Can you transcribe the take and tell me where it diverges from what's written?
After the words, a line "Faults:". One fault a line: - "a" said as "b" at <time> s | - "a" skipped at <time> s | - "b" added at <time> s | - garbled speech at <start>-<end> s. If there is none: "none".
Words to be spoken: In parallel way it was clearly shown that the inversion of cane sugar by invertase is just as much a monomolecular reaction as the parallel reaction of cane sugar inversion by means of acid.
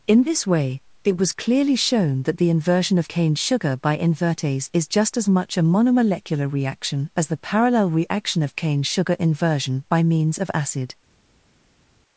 In this way it was clearly shown that the inversion of cane sugar by invertase is just as much a monomolecular reaction as the parallel reaction of cane sugar inversion by means of acid.
Faults:
- "parallel" said as "this" at 0.2 s